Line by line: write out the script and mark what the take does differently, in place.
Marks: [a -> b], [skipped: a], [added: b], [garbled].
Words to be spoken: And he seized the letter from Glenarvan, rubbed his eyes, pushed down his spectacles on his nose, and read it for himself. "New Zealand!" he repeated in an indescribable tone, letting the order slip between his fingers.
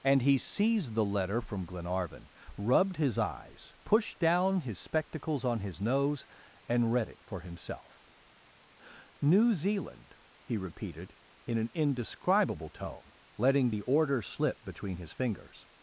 And he seized the letter from Glenarvan, rubbed his eyes, pushed down his spectacles on his nose, and read it for himself. "New Zealand!" he repeated in an indescribable tone, letting the order slip between his fingers.